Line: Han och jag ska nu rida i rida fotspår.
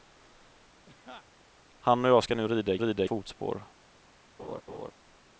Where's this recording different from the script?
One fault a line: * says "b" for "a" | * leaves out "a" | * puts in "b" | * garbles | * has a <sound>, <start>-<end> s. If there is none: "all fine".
* has a laugh, 0.9-1.3 s
* has a laugh, 4.4-4.9 s